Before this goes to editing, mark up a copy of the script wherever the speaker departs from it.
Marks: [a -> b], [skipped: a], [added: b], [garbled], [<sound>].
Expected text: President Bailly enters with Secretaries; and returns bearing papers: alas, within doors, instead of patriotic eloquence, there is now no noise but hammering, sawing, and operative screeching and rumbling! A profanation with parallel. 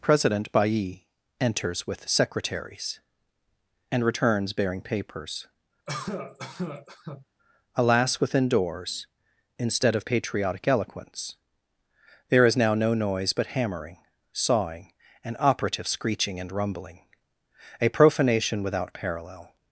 President Bailly enters with Secretaries; and returns bearing papers: [cough] alas, within doors, instead of patriotic eloquence, there is now no noise but hammering, sawing, and operative screeching and rumbling! A profanation [with -> without] parallel.